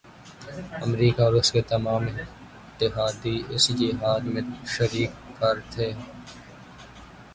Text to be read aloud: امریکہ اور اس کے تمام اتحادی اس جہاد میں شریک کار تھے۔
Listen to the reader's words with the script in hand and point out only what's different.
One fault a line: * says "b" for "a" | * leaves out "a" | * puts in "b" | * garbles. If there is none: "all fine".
all fine